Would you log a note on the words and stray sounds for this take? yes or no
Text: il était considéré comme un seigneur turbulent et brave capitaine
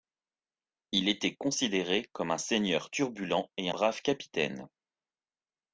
no